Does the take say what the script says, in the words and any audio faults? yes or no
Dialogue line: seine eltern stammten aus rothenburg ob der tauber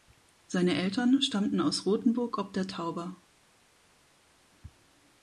yes